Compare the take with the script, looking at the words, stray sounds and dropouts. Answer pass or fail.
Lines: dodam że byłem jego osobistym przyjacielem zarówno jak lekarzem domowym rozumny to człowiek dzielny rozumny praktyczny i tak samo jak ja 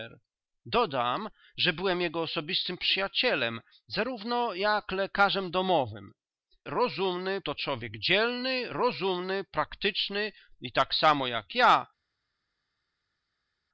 pass